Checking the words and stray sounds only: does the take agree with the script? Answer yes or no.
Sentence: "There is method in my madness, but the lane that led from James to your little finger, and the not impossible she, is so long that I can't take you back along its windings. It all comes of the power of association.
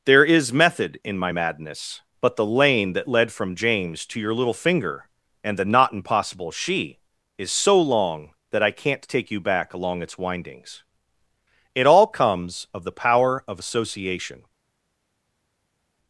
yes